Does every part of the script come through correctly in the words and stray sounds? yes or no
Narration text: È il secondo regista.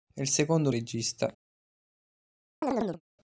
no